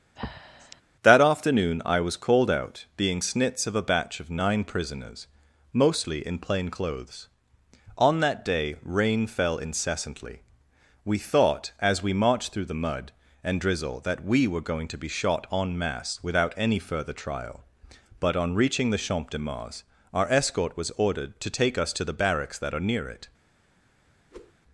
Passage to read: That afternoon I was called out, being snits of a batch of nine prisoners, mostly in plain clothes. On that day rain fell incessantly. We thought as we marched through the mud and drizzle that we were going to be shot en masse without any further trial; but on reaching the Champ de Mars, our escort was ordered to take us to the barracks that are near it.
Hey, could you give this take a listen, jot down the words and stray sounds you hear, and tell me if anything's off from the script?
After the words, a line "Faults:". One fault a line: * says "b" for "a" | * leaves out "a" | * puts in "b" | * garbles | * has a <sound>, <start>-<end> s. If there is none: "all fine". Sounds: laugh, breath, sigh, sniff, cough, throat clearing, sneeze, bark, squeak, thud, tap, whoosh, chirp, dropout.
That afternoon I was called out, being snits of a batch of nine prisoners, mostly in plain clothes. On that day rain fell incessantly. We thought as we marched through the mud and drizzle that we were going to be shot en masse without any further trial; but on reaching the Champ de Mars, our escort was ordered to take us to the barracks that are near it.
Faults:
* has a breath, 0.2-0.8 s
* has a whoosh, 24.3-24.5 s